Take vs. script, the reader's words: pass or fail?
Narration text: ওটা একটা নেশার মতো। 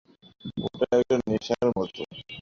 pass